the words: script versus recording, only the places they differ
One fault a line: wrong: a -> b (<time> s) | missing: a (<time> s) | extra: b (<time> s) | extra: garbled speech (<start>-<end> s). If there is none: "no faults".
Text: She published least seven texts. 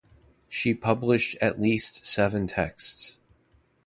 extra: at (1.4 s)